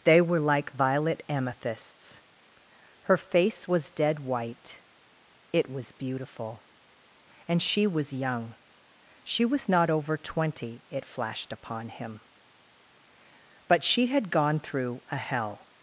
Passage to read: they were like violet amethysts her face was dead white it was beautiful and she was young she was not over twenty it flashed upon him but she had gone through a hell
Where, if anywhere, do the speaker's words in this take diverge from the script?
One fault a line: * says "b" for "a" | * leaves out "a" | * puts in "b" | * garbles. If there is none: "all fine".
all fine